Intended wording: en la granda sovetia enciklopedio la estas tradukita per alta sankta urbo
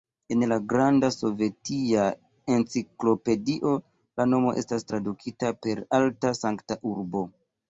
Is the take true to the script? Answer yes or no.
no